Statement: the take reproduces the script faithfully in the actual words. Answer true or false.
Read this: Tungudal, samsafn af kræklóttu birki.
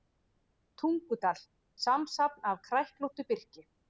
true